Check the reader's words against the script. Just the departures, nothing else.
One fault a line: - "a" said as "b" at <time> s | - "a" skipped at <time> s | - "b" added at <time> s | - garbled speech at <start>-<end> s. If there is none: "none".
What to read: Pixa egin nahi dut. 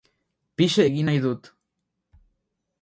none